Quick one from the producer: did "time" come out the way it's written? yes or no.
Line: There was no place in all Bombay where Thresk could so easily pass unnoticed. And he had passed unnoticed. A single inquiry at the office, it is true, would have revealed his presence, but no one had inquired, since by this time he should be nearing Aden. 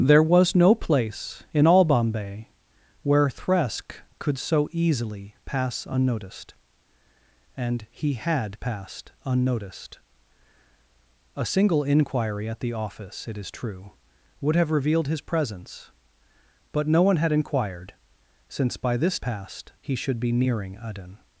no